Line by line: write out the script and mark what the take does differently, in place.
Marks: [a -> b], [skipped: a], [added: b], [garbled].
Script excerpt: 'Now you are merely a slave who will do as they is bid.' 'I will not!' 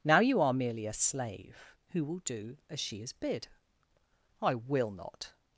'Now you are merely a slave who will do as [they -> she] is bid.' 'I will not!'